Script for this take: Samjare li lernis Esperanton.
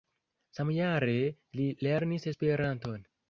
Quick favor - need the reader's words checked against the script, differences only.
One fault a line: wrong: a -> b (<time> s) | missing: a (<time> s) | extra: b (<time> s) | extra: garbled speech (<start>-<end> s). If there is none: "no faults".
no faults